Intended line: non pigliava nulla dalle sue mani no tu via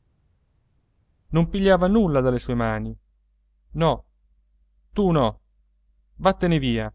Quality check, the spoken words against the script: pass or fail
fail